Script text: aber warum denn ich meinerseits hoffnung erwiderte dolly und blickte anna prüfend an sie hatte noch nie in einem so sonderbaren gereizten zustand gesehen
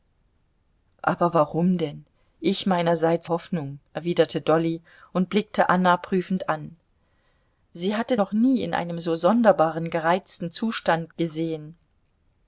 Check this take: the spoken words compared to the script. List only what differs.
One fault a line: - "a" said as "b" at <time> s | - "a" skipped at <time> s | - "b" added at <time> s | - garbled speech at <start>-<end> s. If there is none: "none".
none